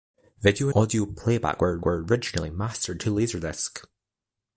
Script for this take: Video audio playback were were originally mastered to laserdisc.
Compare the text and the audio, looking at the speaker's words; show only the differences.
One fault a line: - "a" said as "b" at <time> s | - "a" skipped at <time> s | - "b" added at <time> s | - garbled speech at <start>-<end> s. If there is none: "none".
none